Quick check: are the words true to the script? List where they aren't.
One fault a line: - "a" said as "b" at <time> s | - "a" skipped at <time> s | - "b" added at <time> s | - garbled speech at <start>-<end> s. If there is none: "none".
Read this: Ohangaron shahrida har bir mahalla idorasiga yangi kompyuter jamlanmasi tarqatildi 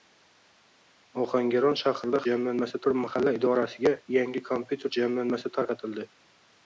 - "har" said as "jamlanmasi" at 2.3 s